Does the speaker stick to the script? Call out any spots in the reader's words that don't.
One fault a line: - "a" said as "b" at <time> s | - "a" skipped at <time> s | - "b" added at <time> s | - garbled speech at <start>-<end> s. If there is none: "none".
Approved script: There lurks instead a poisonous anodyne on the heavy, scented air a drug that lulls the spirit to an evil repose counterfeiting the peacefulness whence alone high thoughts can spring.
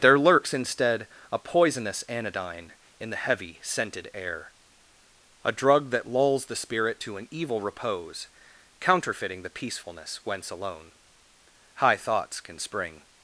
- "on" said as "in" at 3.0 s